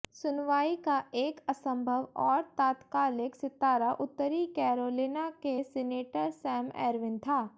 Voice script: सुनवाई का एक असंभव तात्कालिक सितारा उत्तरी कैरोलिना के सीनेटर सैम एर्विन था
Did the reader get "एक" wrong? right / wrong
right